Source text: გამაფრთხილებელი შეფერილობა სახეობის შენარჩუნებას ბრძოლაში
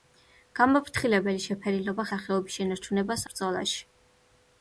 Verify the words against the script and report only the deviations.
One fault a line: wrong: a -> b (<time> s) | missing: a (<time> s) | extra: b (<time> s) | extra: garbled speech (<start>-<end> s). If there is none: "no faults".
no faults